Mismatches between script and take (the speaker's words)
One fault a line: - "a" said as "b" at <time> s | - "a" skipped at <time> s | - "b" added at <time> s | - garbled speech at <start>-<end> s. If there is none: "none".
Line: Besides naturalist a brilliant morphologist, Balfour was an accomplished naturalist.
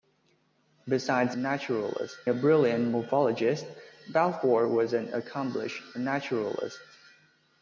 none